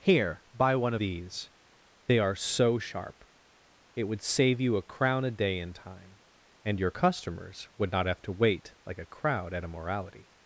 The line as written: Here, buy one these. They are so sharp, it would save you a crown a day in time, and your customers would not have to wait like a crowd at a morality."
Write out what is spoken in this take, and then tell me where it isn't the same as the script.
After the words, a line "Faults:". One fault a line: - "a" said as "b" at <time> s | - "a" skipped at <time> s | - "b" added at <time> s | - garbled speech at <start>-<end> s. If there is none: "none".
Here, buy one these. They are so sharp, it would save you a crown a day in time, and your customers would not have to wait like a crowd at a morality."
Faults:
none